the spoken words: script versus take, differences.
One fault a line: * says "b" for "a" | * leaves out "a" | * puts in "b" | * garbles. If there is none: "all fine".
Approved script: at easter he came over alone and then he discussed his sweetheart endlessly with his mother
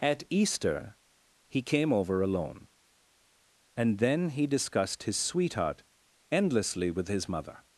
all fine